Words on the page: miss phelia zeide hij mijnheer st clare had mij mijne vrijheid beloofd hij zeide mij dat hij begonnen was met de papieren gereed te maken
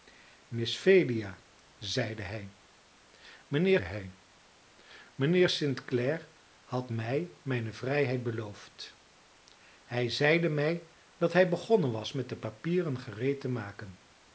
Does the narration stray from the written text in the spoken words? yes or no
yes